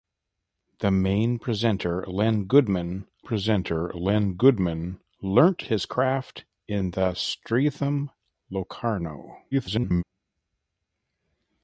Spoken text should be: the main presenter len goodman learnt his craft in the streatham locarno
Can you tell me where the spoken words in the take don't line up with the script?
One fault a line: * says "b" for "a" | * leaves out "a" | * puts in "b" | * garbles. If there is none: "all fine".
* puts in "presenter len goodman"
* garbles